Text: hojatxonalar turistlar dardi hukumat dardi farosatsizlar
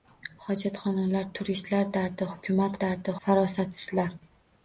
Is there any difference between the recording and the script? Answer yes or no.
no